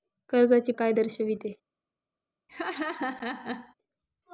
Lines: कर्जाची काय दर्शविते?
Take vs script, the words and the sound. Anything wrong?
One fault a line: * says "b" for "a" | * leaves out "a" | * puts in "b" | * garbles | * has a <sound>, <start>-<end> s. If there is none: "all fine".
* has a laugh, 2.5-3.7 s